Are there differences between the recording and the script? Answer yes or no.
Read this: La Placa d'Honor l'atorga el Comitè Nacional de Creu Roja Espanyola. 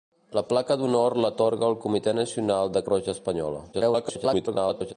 yes